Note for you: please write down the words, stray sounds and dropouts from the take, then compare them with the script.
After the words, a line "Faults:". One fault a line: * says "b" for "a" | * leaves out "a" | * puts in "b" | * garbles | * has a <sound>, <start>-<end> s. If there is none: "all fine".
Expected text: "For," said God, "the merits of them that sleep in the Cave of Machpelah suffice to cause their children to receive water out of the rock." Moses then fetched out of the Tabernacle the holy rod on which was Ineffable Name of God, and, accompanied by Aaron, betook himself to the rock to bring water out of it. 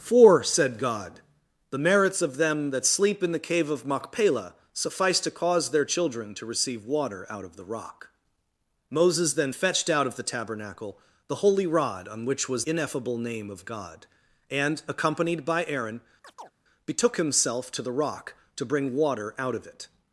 "For," said God, "the merits of them that sleep in the Cave of Machpelah suffice to cause their children to receive water out of the rock." Moses then fetched out of the Tabernacle the holy rod on which was Ineffable Name of God, and, accompanied by Aaron, betook himself to the rock to bring water out of it.
Faults:
* has a chirp, 16.2-16.5 s